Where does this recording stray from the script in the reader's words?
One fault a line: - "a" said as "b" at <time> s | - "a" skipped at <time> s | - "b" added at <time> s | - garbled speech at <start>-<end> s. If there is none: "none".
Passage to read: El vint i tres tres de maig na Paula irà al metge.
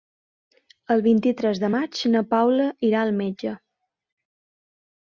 - "tres" skipped at 1.6 s